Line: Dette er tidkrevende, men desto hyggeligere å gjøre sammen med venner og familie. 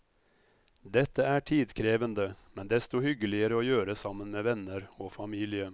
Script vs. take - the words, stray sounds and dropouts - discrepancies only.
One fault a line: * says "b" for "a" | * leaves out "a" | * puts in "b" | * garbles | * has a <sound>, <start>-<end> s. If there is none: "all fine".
all fine